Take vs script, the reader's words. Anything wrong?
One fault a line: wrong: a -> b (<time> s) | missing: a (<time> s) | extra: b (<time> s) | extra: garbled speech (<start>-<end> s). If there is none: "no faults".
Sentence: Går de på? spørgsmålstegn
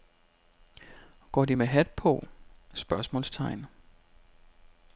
extra: med hat (1.5 s)